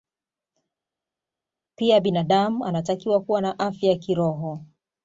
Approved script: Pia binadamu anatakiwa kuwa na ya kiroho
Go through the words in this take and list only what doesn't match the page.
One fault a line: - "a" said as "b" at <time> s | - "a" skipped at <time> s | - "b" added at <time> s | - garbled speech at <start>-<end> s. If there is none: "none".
- "afya" added at 3.6 s